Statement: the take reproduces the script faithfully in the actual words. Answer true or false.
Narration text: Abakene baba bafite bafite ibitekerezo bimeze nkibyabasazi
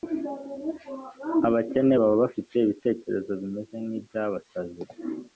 false